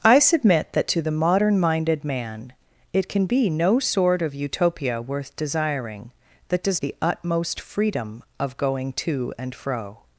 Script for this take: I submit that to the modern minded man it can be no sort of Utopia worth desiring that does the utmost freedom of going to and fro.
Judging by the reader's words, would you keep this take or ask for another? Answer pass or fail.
pass